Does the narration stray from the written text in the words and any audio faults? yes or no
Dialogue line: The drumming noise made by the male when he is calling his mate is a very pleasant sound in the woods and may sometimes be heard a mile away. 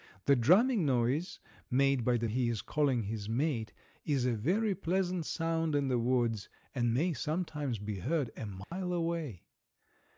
yes